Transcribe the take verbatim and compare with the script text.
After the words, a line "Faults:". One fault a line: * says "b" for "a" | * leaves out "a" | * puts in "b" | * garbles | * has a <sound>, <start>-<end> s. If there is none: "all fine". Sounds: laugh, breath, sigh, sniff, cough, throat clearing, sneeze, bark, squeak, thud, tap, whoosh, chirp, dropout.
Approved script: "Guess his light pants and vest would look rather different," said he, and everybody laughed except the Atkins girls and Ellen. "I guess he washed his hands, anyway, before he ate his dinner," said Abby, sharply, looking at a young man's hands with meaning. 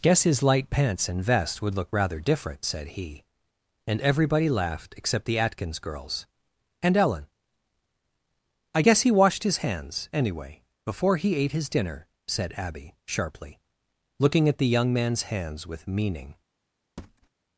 "Guess his light pants and vest would look rather different," said he, and everybody laughed except the Atkins girls and Ellen. "I guess he washed his hands, anyway, before he ate his dinner," said Abby, sharply, looking at the young man's hands with meaning.
Faults:
* says "the" for "a"
* has a thud, 17.0-17.3 s